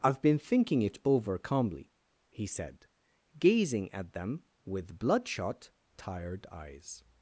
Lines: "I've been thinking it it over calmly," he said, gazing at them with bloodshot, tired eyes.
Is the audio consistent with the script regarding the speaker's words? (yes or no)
no